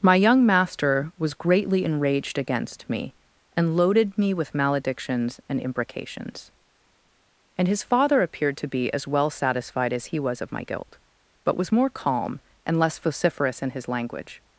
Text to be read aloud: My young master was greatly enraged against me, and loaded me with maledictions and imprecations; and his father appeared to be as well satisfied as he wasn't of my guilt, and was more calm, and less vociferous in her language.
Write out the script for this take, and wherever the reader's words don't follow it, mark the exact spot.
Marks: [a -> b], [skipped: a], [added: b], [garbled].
My young master was greatly enraged against me, and loaded me with maledictions and imprecations; and his father appeared to be as well satisfied as he [wasn't -> was] of my guilt, [and -> but] was more calm, and less vociferous in [her -> his] language.